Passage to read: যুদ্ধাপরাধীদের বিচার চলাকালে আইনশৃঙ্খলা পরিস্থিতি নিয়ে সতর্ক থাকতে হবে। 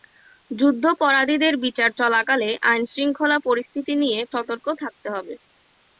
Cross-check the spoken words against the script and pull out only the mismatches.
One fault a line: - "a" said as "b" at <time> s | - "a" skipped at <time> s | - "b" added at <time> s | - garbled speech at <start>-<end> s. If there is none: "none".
none